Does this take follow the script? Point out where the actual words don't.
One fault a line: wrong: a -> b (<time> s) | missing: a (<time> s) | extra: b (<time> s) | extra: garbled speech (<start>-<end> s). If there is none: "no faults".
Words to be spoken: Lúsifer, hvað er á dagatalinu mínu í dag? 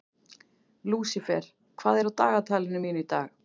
no faults